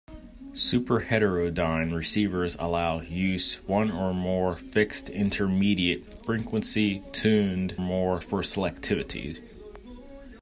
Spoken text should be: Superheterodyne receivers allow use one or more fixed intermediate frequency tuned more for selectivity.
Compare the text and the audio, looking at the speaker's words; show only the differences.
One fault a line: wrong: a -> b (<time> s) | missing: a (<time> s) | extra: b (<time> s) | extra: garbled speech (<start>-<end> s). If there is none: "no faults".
no faults